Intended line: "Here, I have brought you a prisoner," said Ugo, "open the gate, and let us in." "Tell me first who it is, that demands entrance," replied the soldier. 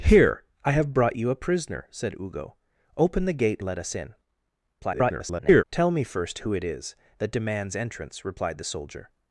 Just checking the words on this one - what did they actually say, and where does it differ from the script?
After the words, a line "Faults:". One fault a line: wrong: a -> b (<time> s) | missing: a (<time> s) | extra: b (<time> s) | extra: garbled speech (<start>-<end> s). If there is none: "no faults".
"Here, I have brought you a prisoner," said Ugo, "open the gate, let us in." [garbled] "Tell me first who it is, that demands entrance," replied the soldier.
Faults:
missing: and (3.6 s)
extra: garbled speech (4.8-5.6 s)